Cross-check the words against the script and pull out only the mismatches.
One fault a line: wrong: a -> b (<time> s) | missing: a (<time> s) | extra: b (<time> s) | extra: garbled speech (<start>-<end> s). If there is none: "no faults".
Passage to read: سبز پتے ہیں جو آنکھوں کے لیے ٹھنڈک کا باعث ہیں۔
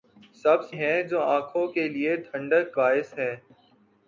missing: پتے (0.7 s)
missing: کا (2.7 s)